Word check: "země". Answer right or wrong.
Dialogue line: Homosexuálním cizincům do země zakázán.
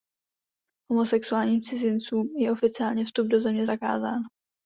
right